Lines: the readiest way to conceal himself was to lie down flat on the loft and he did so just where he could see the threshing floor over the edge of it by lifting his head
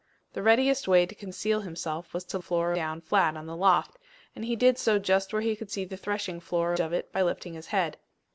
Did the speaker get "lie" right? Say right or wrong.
wrong